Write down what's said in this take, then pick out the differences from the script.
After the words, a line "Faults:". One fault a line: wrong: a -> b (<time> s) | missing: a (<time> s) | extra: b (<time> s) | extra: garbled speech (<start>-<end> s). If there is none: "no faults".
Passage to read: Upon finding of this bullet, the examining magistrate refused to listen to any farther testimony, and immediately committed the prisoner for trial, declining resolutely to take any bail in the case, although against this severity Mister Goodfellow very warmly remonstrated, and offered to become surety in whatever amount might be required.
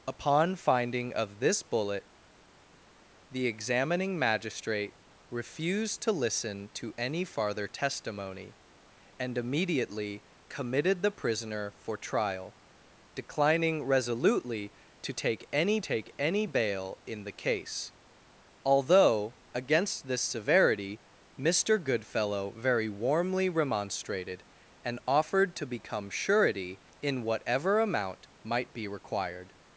Upon finding of this bullet, the examining magistrate refused to listen to any farther testimony, and immediately committed the prisoner for trial, declining resolutely to take any take any bail in the case, although against this severity Mister Goodfellow very warmly remonstrated, and offered to become surety in whatever amount might be required.
Faults:
extra: take any (15.8 s)